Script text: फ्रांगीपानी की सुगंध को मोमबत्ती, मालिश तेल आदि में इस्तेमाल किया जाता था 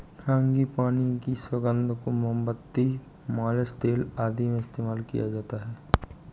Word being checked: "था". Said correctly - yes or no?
no